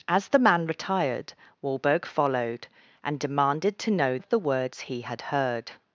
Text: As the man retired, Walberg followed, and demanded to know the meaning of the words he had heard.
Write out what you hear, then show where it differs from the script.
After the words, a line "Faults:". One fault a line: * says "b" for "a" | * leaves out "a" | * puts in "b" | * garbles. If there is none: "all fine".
As the man retired, Walberg followed, and demanded to know of the words he had heard.
Faults:
* leaves out "the meaning"